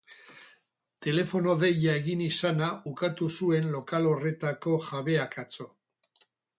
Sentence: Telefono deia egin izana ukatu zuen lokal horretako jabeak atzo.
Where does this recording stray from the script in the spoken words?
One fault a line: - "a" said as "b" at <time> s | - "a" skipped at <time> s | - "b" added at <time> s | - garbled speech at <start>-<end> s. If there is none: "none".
none